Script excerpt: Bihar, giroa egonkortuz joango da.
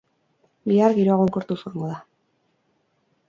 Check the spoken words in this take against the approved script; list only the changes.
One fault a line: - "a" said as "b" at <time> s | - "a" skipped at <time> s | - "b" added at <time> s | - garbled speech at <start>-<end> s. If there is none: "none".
none